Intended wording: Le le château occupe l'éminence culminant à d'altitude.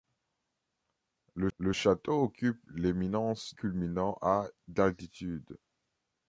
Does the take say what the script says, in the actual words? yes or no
yes